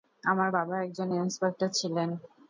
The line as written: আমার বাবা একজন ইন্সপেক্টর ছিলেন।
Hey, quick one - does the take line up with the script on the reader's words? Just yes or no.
yes